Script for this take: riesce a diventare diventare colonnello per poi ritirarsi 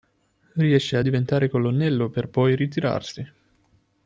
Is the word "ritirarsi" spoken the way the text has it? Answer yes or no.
yes